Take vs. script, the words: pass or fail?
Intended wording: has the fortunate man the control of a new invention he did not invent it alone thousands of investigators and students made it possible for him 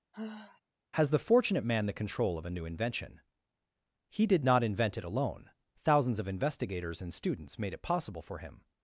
pass